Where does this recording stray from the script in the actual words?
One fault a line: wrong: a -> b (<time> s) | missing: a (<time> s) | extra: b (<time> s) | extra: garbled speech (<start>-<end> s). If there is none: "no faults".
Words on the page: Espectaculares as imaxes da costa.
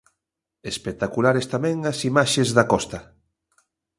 extra: tamén (1.5 s)